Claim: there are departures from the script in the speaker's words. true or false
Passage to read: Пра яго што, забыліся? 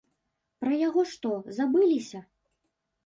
false